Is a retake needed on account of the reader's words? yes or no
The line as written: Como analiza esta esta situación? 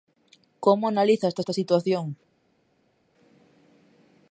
no